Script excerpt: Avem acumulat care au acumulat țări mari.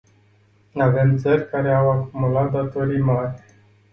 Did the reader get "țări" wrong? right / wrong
wrong